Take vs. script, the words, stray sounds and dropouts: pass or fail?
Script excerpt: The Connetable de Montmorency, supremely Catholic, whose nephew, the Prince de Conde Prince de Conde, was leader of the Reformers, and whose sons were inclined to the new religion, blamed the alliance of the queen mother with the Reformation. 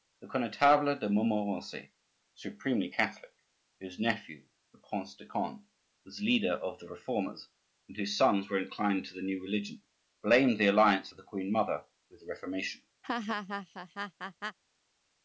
fail